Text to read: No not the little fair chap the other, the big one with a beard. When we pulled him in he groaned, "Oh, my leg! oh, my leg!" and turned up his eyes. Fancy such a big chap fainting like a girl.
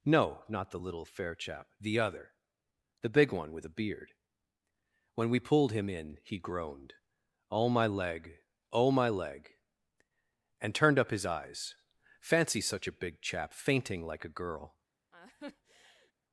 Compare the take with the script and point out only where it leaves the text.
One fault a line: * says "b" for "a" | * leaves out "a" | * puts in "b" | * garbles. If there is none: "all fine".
all fine